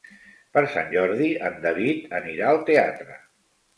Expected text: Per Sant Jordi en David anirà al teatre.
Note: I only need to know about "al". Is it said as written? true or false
true